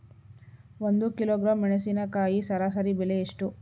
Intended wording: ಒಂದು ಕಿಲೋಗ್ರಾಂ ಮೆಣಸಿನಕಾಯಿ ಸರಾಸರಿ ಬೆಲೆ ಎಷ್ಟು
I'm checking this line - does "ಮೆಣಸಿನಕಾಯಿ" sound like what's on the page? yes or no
yes